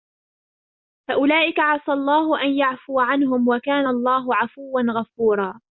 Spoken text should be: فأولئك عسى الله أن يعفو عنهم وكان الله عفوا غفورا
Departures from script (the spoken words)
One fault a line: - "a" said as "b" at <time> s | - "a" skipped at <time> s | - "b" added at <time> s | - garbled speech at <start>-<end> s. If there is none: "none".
none